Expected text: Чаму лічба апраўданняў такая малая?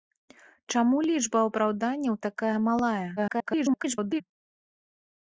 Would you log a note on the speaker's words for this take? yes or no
yes